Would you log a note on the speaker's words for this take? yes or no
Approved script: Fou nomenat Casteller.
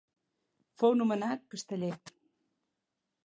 no